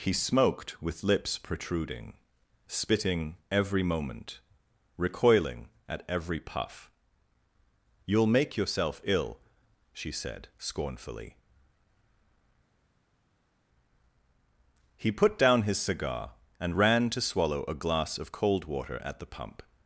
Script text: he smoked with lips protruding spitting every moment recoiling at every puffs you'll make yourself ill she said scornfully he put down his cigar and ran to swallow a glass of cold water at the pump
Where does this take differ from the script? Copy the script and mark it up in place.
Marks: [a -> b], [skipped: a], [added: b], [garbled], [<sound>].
he smoked with lips protruding spitting every moment recoiling at every [puffs -> puff] you'll make yourself ill she said scornfully he put down his cigar and ran to swallow a glass of cold water at the pump